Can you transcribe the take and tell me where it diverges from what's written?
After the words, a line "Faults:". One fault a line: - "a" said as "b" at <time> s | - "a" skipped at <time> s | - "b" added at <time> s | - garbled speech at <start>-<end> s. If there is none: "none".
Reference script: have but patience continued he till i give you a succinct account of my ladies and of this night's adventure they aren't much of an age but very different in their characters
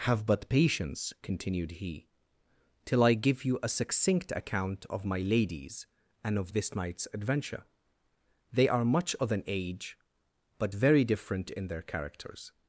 have but patience continued he till i give you a succinct account of my ladies and of this night's adventure they are much of an age but very different in their characters
Faults:
- "aren't" said as "are" at 8.7 s